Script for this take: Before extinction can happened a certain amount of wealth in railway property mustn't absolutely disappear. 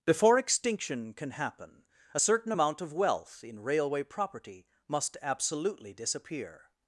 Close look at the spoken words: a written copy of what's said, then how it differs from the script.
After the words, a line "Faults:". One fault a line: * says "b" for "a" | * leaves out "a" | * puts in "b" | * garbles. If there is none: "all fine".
Before extinction can happen a certain amount of wealth in railway property must absolutely disappear.
Faults:
* says "happen" for "happened"
* says "must" for "mustn't"